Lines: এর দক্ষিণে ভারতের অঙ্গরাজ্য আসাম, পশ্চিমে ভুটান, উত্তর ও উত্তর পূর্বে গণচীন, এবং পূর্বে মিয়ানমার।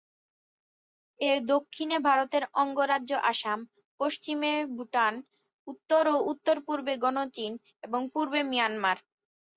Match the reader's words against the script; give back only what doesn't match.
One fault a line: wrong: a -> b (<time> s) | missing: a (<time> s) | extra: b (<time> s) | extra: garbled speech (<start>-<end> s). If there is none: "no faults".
no faults